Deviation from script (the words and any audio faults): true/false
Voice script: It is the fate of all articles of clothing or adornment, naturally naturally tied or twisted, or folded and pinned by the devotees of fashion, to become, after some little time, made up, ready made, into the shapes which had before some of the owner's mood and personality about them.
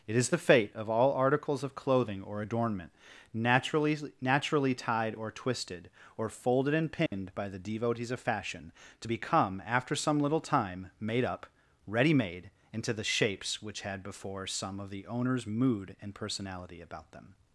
true